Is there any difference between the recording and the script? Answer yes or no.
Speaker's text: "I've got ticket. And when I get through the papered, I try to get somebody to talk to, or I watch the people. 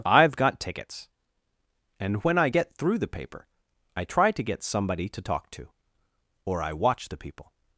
yes